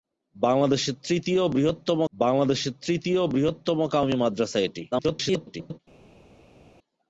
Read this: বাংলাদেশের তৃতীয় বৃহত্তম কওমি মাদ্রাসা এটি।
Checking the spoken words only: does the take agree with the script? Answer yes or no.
no